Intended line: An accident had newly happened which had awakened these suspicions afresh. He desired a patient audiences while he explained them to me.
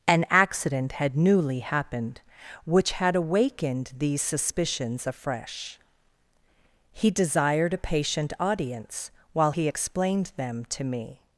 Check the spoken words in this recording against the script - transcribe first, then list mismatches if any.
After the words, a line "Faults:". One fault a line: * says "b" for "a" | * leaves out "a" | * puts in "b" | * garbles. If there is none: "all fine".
An accident had newly happened which had awakened these suspicions afresh. He desired a patient audience while he explained them to me.
Faults:
* says "audience" for "audiences"